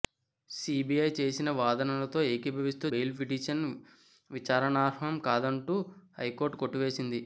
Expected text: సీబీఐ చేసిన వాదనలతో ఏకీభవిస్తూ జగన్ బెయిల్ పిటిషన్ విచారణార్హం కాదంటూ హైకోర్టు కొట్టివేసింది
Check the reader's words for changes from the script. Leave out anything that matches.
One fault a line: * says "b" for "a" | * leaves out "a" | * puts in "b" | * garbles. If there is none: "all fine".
* leaves out "జగన్"